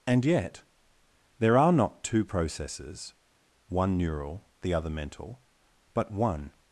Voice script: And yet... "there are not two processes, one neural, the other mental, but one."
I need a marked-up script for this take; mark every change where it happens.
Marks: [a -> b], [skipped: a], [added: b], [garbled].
And yet... "there are not two processes, one neural, the other mental, but one."